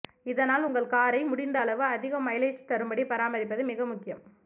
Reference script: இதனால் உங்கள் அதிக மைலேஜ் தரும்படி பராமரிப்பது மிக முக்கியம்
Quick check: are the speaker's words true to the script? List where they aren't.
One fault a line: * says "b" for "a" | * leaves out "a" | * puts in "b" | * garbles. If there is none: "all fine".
* puts in "காரை முடிந்த அளவு"